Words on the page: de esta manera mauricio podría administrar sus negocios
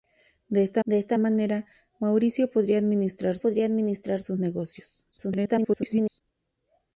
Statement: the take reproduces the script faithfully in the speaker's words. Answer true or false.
false